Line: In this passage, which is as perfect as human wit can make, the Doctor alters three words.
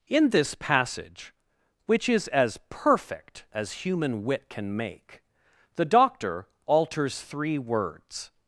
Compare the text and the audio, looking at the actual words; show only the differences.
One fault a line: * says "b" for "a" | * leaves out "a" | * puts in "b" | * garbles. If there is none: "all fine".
all fine